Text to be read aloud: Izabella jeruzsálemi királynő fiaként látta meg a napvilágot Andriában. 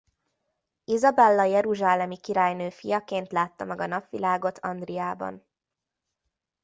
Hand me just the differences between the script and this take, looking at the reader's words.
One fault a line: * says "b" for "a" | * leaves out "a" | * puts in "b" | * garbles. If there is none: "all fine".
all fine